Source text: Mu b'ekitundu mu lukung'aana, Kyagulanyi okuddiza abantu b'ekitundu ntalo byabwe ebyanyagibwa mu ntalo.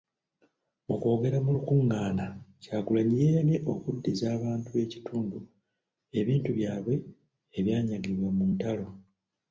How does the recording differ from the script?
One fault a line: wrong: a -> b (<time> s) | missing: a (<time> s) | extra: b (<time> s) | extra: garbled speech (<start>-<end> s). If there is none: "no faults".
wrong: b'ekitundu -> kwogera (1.0 s)
extra: yeeyamye (3.2 s)
wrong: ntalo -> ebintu (6.2 s)